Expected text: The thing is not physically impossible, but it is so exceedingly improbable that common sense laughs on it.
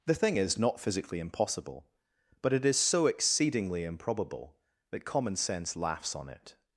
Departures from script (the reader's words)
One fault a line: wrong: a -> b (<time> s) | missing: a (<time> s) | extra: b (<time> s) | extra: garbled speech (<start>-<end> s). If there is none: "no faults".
no faults